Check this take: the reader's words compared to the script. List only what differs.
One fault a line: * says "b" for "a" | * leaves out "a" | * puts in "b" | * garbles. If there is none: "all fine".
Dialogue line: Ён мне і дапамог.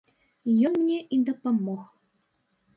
all fine